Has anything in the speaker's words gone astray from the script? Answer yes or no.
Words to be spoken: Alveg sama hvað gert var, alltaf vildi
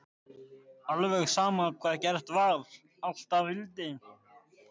no